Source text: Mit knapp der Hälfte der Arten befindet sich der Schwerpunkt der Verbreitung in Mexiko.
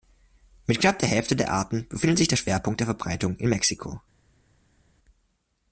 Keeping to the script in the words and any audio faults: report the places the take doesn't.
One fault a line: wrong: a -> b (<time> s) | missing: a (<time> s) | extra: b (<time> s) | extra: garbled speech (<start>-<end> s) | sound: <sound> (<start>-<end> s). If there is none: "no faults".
no faults